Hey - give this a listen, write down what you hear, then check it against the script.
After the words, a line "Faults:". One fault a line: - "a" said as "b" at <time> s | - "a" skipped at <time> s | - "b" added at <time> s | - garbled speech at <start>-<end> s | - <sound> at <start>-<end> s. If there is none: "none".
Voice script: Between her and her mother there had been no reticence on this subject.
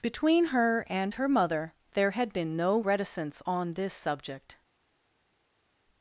Between her and her mother there had been no reticence on this subject.
Faults:
none